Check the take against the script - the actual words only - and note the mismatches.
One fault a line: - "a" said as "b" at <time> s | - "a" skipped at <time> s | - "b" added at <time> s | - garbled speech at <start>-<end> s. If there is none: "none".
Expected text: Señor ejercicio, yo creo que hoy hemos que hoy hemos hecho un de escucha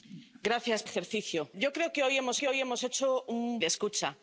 none